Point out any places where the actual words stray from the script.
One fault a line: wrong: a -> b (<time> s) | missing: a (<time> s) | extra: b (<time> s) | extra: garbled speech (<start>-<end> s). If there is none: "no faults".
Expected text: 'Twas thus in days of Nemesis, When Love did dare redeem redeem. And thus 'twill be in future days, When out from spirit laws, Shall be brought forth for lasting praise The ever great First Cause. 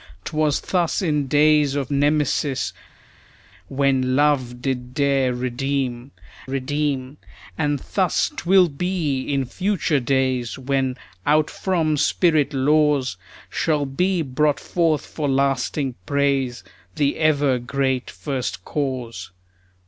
no faults